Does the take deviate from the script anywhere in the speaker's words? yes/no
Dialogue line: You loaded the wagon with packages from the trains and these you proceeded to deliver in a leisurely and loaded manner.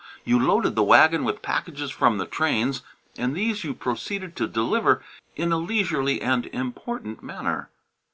yes